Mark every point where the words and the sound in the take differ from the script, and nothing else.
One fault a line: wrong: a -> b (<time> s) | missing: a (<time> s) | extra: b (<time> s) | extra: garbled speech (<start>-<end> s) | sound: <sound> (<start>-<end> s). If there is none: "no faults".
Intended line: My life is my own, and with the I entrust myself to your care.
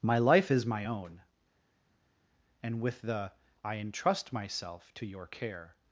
no faults